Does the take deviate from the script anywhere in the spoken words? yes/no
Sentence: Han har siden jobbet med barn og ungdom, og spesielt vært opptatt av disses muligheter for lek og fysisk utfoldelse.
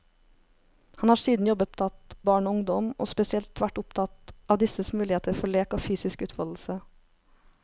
yes